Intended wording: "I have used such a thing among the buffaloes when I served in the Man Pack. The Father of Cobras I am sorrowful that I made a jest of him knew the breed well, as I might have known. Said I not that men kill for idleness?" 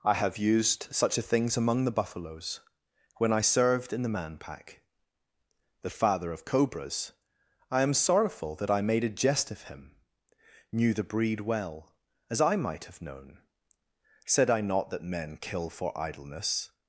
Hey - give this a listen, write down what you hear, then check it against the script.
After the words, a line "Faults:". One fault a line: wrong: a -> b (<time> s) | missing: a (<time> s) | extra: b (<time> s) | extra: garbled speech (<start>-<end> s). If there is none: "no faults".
"I have used such a things among the buffaloes when I served in the Man Pack. The Father of Cobras I am sorrowful that I made a jest of him knew the breed well, as I might have known. Said I not that men kill for idleness?"
Faults:
wrong: thing -> things (1.2 s)